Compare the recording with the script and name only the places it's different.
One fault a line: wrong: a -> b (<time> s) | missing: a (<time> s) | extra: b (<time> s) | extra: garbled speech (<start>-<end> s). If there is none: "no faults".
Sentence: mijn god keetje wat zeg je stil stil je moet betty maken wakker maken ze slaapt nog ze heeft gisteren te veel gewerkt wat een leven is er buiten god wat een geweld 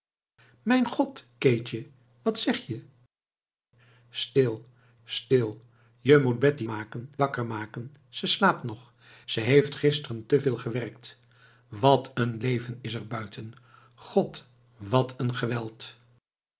no faults